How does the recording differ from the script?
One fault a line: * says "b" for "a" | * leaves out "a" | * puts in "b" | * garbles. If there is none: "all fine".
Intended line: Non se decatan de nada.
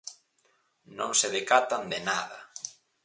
all fine